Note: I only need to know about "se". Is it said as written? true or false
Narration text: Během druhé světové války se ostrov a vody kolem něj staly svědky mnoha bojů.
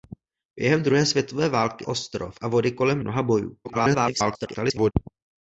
false